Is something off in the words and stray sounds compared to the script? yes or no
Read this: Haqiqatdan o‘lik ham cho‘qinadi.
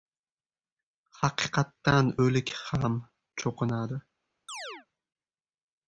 yes